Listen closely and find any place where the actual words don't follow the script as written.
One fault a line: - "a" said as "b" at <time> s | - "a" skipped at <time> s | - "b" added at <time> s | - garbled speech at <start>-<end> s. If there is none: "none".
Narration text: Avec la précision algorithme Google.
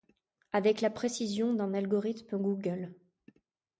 - "d'un" added at 1.5 s